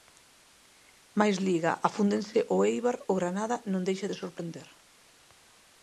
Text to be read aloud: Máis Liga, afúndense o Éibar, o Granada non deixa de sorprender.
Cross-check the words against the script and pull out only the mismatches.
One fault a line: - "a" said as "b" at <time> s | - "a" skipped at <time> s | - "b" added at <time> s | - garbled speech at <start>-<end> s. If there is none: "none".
none